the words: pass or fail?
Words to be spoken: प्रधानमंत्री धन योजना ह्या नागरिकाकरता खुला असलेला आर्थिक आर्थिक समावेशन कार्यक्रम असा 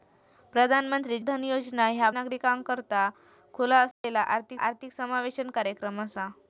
pass